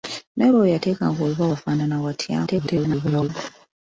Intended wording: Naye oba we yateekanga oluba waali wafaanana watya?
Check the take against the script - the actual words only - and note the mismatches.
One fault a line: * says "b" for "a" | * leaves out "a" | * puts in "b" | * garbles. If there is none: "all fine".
* leaves out "waali"
* garbles